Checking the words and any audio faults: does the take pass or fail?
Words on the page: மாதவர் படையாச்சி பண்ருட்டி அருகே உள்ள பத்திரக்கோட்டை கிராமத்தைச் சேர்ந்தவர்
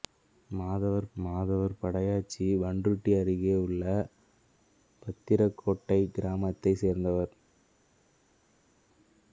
fail